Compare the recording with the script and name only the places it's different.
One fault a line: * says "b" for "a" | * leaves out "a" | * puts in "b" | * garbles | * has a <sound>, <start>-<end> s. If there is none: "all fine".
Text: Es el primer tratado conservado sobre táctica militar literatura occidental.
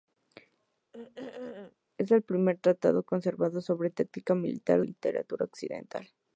* has a throat clearing, 0.9-1.8 s